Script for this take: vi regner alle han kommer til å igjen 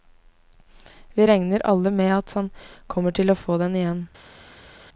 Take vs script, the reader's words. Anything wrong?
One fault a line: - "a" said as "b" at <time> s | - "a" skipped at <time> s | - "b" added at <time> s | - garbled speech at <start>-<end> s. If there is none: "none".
- "med at" added at 1.9 s
- "få den" added at 3.4 s